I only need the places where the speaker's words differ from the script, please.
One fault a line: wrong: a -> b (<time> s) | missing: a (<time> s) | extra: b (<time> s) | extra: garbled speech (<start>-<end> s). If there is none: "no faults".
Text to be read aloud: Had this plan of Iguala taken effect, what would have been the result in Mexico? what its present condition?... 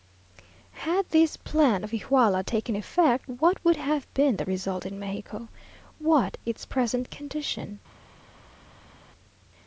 no faults